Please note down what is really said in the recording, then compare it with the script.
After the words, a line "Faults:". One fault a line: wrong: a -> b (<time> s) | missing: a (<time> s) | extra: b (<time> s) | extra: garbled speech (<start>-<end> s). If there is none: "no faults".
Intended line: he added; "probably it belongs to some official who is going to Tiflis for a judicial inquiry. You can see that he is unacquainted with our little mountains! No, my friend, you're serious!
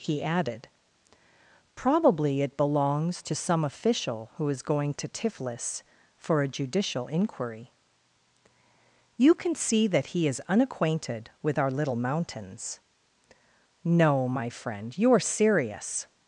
he added; "probably it belongs to some official who is going to Tiflis for a judicial inquiry. You can see that he is unacquainted with our little mountains! No, my friend, you're serious!
Faults:
no faults